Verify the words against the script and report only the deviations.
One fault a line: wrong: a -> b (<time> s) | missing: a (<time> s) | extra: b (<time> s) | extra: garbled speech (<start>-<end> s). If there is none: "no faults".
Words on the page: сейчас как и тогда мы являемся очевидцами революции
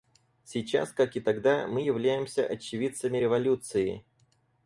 no faults